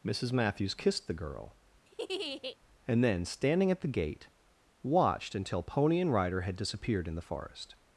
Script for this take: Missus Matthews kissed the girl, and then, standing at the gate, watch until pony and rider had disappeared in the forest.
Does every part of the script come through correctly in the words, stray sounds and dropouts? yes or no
no